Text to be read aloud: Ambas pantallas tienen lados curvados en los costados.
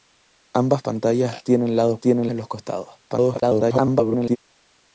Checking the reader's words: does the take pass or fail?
fail